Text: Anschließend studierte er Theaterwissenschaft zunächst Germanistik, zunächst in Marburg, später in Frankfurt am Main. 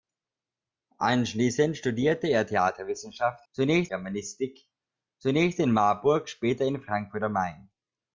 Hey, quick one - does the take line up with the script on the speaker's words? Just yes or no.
yes